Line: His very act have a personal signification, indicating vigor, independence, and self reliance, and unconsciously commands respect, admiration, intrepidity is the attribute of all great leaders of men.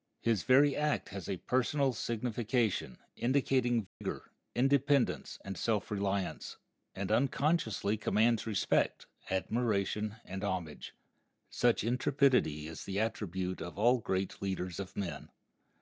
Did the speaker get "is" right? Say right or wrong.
right